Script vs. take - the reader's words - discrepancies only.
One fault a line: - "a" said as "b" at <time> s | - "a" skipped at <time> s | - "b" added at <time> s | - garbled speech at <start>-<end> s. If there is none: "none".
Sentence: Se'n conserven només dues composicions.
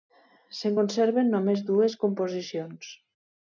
none